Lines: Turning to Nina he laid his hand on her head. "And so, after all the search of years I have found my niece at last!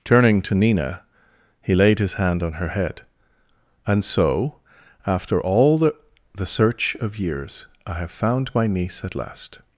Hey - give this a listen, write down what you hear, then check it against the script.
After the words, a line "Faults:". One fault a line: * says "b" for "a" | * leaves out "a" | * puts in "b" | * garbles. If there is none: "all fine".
Turning to Nina he laid his hand on her head. "And so, after all the the search of years I have found my niece at last!
Faults:
* puts in "the"